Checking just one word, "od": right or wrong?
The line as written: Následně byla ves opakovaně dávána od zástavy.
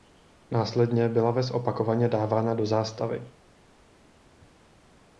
wrong